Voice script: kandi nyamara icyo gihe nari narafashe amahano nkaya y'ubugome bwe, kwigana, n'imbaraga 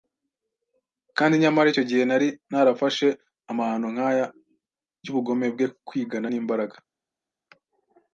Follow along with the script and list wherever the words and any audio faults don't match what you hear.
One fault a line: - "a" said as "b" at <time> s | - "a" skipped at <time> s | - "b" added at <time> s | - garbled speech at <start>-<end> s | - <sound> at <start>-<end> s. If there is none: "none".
none